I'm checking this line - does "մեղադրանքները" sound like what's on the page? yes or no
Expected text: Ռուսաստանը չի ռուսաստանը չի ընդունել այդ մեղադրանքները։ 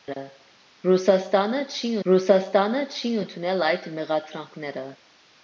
yes